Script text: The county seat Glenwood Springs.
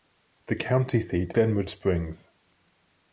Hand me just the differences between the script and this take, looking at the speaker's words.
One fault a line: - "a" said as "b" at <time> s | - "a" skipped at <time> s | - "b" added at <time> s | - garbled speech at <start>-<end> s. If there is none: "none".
none